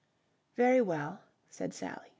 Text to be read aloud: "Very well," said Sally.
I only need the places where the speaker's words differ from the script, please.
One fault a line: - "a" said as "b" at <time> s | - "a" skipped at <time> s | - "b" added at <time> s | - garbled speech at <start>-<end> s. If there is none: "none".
none